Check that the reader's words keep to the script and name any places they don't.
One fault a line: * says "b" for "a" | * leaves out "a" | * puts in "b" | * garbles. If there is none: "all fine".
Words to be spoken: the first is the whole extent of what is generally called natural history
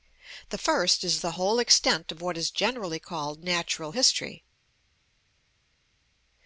all fine